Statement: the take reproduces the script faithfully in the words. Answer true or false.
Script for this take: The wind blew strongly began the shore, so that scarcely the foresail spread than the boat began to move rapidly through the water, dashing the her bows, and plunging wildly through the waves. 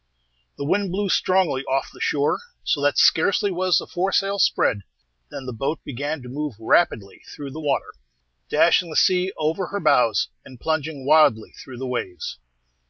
false